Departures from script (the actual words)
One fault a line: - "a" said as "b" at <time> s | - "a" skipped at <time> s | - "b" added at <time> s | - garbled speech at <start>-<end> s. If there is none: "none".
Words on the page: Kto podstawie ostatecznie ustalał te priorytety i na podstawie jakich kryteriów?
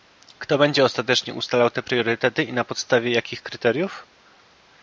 - "podstawie" said as "będzie" at 0.6 s